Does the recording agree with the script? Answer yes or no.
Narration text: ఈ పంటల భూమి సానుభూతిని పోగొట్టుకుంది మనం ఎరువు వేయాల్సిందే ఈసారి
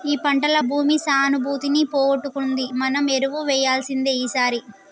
yes